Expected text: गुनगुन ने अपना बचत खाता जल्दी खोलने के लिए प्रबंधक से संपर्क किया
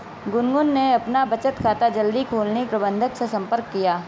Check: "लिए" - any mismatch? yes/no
yes